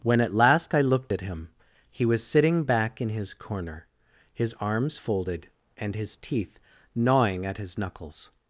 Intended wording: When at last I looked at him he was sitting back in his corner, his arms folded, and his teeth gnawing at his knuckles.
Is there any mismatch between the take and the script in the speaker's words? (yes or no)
no